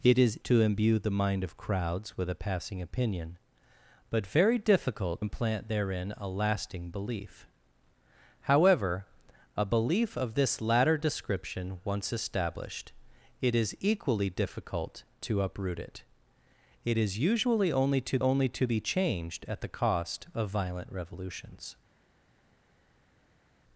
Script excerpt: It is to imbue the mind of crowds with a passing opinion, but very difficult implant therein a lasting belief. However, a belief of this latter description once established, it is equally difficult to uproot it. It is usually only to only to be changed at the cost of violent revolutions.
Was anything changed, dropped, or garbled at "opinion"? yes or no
no